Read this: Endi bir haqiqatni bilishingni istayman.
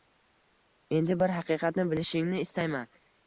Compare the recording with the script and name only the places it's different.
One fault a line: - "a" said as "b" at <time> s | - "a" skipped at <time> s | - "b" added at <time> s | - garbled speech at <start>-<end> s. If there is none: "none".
none